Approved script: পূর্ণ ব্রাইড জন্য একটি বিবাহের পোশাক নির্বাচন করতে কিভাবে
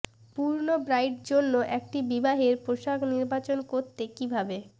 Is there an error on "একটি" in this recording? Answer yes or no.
no